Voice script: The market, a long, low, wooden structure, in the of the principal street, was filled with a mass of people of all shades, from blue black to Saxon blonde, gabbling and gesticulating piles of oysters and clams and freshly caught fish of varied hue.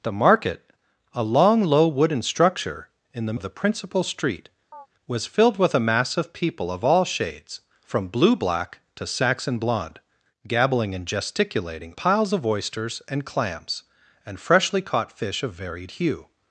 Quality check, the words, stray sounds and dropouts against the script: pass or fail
fail